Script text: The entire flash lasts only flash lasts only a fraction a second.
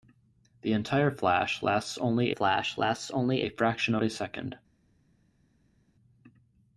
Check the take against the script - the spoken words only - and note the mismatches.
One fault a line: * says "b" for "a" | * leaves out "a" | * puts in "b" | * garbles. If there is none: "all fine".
all fine